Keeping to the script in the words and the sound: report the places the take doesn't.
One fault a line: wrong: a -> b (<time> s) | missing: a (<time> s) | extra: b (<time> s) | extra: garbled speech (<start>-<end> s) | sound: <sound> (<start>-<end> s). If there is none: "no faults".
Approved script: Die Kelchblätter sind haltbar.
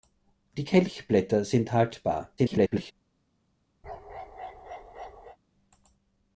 extra: garbled speech (2.4-2.9 s)
sound: bark (3.8-5.4 s)